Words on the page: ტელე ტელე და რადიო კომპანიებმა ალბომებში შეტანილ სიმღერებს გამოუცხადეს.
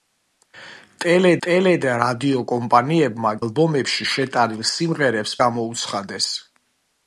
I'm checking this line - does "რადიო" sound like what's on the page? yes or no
yes